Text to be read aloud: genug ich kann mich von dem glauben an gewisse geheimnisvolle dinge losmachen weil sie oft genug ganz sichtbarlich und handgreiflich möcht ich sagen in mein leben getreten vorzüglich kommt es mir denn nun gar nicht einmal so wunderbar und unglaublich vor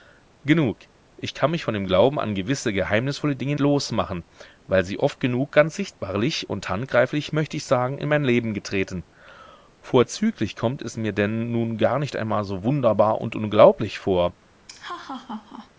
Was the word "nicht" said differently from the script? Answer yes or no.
no